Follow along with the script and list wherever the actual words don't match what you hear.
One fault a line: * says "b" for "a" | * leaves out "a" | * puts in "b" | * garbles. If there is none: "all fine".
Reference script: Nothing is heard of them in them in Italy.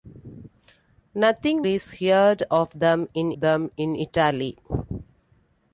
all fine